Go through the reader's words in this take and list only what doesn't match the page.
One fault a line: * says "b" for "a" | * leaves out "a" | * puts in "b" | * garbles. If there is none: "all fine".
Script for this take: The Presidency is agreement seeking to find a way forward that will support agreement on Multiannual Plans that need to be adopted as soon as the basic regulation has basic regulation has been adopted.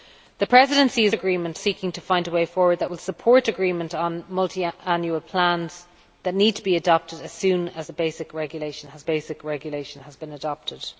all fine